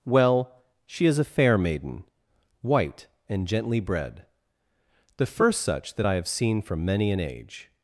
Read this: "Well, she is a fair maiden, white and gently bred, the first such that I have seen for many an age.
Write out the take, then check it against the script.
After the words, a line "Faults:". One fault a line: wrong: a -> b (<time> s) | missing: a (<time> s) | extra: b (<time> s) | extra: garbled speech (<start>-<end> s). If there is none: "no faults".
"Well, she is a fair maiden, white and gently bred, the first such that I have seen for many an age.
Faults:
no faults